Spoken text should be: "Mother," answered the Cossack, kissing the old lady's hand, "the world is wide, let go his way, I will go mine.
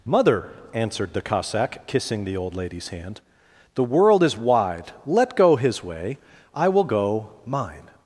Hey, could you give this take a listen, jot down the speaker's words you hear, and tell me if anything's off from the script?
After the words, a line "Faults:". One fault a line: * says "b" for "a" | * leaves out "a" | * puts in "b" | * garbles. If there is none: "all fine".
"Mother," answered the Cossack, kissing the old lady's hand, "the world is wide, let go his way, I will go mine.
Faults:
all fine